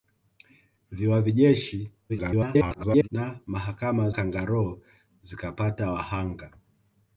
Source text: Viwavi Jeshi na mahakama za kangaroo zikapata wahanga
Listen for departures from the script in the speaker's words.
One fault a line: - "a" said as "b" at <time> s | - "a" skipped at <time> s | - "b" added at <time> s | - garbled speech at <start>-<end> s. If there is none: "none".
- garbled speech at 2.1-3.1 s
- "za" skipped at 4.1 s